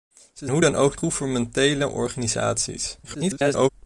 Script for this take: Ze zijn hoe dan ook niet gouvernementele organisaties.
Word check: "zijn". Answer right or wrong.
wrong